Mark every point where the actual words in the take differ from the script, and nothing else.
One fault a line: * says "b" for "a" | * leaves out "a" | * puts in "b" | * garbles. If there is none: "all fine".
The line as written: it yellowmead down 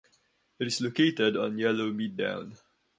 * puts in "is located on"